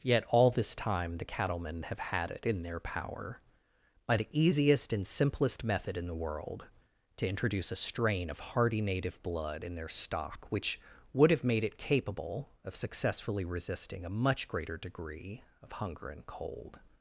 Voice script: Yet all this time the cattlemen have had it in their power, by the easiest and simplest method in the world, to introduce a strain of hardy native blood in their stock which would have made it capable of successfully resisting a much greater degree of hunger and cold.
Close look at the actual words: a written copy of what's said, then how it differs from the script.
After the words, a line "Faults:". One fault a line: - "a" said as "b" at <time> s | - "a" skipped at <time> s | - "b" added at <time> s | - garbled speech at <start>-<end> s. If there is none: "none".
Yet all this time the cattlemen have had it in their power, by the easiest and simplest method in the world, to introduce a strain of hardy native blood in their stock which would have made it capable of successfully resisting a much greater degree of hunger and cold.
Faults:
none